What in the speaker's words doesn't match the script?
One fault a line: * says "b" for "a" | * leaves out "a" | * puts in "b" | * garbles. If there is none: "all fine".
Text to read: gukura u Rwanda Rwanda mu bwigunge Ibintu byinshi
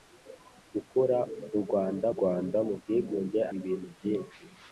all fine